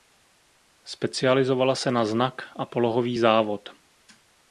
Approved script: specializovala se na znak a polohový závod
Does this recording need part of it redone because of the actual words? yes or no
no